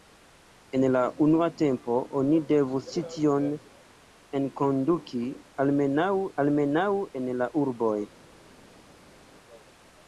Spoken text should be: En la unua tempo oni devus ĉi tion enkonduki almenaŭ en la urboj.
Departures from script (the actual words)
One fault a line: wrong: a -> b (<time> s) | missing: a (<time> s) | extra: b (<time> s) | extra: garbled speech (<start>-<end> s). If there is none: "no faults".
extra: almenaŭ (6.5 s)